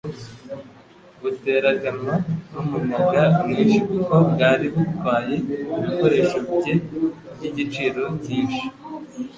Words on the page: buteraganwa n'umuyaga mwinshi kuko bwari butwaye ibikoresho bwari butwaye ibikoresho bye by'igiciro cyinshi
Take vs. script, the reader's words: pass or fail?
fail